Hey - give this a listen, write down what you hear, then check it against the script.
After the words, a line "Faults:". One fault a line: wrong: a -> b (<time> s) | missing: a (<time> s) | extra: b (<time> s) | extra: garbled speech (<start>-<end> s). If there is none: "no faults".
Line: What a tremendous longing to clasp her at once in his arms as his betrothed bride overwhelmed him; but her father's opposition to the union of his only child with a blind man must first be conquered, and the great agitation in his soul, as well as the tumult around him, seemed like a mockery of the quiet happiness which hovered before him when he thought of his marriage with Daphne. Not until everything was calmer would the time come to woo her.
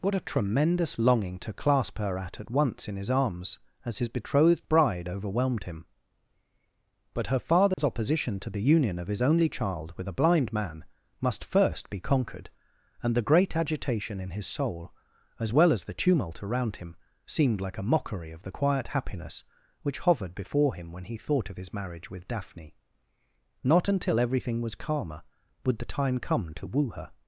What a tremendous longing to clasp her at at once in his arms as his betrothed bride overwhelmed him; but her father's opposition to the union of his only child with a blind man must first be conquered, and the great agitation in his soul, as well as the tumult around him, seemed like a mockery of the quiet happiness which hovered before him when he thought of his marriage with Daphne. Not until everything was calmer would the time come to woo her.
Faults:
extra: at (2.4 s)